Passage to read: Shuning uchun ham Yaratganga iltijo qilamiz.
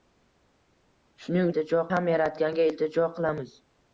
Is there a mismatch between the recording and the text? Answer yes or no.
yes